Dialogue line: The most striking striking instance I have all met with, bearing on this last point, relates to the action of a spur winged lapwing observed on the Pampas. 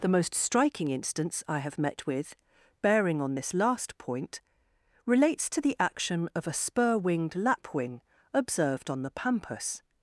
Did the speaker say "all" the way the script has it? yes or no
no